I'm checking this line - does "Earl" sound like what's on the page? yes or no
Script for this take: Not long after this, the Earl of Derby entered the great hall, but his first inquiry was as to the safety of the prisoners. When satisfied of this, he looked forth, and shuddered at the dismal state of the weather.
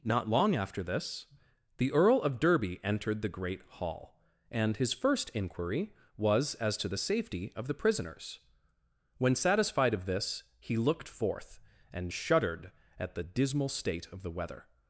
yes